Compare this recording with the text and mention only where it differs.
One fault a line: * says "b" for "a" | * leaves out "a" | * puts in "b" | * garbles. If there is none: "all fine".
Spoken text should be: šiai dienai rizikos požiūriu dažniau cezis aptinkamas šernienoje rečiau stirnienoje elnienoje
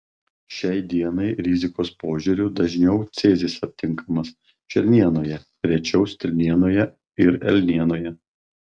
* puts in "ir"